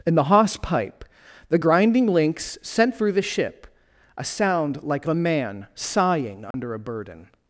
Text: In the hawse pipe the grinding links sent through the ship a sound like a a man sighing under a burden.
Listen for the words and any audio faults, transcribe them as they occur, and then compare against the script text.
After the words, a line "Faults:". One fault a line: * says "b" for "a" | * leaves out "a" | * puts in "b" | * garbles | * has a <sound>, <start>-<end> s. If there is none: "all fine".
In the hawse pipe the grinding links sent through the ship a sound like a a man sighing under a burden.
Faults:
* has a dropout, 6.5-6.5 s